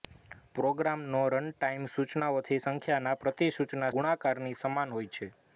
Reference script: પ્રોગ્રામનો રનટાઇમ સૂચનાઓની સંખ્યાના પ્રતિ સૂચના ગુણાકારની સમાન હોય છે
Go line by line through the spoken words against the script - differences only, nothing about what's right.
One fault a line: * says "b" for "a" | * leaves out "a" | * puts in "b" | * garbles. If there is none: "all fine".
all fine